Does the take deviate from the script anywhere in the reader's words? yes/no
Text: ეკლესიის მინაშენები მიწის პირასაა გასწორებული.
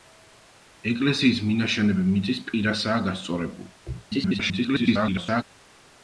yes